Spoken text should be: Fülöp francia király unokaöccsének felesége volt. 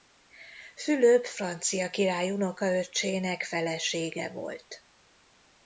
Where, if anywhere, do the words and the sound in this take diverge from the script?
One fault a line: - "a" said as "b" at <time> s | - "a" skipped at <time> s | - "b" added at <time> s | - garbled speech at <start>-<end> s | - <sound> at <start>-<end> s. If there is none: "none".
none